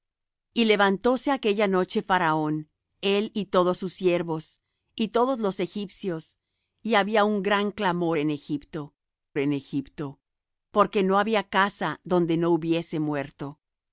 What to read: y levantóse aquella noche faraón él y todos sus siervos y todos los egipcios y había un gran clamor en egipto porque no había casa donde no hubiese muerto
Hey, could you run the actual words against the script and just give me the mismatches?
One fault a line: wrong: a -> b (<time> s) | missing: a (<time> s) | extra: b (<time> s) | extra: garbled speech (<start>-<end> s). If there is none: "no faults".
extra: en egipto (9.4 s)